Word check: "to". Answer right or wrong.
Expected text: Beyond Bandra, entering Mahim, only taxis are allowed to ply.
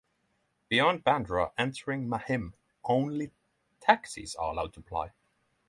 right